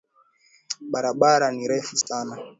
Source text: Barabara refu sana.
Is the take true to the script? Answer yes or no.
no